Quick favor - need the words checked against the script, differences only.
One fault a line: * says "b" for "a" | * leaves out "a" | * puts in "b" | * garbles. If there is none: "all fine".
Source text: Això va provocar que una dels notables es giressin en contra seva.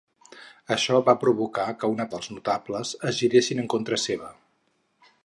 all fine